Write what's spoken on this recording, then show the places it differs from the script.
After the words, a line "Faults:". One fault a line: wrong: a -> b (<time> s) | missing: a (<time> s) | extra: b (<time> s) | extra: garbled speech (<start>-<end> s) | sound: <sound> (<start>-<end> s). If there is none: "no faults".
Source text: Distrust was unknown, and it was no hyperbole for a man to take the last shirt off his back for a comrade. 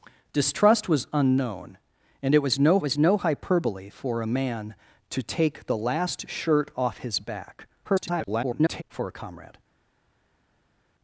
Distrust was unknown, and it was no was no hyperbole for a man to take the last shirt off his back [garbled] for a comrade.
Faults:
extra: was no (2.8 s)
extra: garbled speech (7.8-8.8 s)